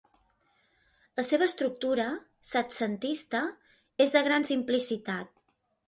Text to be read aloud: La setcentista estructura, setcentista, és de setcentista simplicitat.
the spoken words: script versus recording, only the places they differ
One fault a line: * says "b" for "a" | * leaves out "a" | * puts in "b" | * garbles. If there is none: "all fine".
* says "seva" for "setcentista"
* says "gran" for "setcentista"